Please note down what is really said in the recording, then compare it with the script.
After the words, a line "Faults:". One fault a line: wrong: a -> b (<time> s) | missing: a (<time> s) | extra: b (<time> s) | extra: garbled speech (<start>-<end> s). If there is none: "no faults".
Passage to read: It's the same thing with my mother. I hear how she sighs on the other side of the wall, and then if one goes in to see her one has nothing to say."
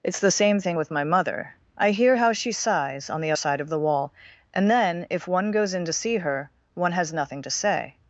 It's the same thing with my mother. I hear how she sighs on the side of the wall, and then if one goes in to see her one has nothing to say."
Faults:
missing: other (3.3 s)